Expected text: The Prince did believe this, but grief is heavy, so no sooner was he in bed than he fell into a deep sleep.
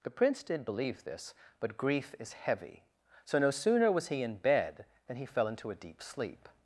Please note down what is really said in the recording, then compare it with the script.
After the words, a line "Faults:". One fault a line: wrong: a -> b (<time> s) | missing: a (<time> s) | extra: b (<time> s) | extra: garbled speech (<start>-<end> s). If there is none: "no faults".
The Prince did believe this, but grief is heavy, so no sooner was he in bed than he fell into a deep sleep.
Faults:
no faults